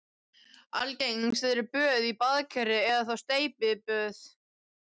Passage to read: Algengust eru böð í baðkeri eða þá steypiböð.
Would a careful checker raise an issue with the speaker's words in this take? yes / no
no